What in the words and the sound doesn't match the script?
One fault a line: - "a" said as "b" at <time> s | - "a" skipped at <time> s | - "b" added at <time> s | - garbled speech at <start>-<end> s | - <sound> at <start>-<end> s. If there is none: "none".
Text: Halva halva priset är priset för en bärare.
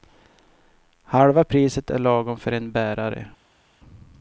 - "halva" skipped at 1.4 s
- "priset" said as "lagom" at 2.0 s